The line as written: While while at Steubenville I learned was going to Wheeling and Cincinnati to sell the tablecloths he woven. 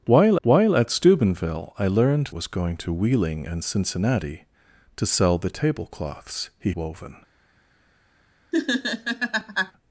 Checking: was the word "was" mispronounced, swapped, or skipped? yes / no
no